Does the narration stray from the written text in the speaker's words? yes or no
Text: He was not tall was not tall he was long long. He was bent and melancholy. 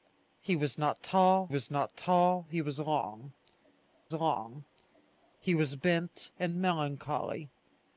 no